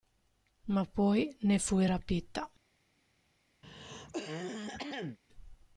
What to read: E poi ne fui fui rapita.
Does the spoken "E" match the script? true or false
false